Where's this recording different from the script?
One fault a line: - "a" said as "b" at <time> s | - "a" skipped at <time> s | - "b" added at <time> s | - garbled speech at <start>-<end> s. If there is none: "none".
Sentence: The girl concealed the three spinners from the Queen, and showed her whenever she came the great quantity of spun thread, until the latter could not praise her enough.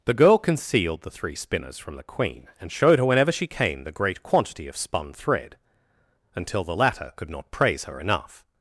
none